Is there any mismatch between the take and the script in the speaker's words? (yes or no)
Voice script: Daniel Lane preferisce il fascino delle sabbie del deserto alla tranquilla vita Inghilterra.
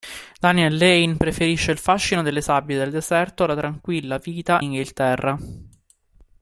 no